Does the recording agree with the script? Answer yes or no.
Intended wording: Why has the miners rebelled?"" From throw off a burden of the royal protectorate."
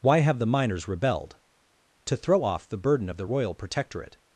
no